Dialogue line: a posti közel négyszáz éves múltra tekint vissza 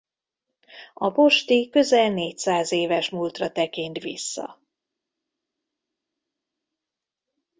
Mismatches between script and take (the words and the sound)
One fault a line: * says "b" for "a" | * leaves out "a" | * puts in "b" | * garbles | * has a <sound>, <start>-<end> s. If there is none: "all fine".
all fine